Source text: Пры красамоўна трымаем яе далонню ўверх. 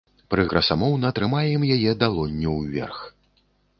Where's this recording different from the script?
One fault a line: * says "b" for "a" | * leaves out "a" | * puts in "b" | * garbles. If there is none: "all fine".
all fine